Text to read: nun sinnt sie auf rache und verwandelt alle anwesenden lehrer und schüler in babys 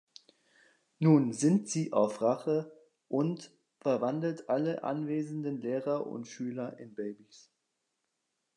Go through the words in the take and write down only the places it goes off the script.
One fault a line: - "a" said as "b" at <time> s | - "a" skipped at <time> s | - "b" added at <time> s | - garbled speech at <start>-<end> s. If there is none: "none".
none